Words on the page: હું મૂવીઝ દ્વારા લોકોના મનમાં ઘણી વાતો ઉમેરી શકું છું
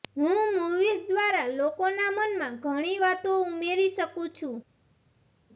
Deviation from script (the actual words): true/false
false